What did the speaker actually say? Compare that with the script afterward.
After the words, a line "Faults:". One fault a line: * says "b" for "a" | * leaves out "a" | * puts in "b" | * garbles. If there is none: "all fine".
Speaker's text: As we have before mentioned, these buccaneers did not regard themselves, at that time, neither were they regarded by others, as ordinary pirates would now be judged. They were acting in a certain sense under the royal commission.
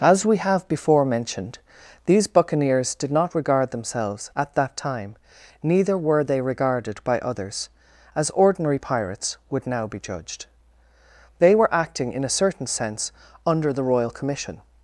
As we have before mentioned, these buccaneers did not regard themselves, at that time, neither were they regarded by others, as ordinary pirates would now be judged. They were acting in a certain sense under the royal commission.
Faults:
all fine